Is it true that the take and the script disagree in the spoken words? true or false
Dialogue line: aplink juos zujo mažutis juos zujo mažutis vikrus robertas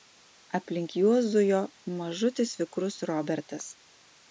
true